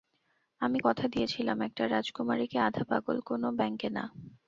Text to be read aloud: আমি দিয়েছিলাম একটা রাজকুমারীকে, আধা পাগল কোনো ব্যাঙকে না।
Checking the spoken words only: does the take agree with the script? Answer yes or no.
no